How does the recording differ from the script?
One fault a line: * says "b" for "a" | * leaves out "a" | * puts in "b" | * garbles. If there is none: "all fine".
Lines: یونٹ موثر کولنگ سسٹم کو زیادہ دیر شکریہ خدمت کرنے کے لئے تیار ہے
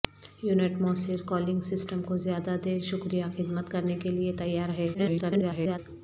* garbles